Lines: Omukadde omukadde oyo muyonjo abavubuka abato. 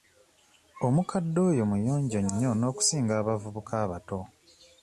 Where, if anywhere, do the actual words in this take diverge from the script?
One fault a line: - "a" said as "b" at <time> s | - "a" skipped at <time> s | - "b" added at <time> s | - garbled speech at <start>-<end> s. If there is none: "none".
- "omukadde" skipped at 1.4 s
- "nnyo n'okusinga" added at 2.2 s